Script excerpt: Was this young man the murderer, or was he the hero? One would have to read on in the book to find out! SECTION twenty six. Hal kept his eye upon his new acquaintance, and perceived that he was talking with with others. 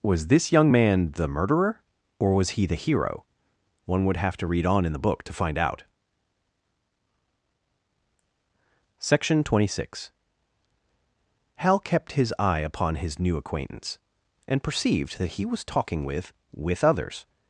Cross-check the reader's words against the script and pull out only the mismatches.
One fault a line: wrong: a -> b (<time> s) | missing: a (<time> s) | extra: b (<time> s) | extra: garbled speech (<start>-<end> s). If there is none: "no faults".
no faults